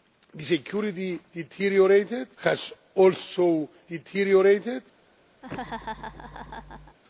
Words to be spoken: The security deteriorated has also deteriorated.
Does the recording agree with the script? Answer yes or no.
yes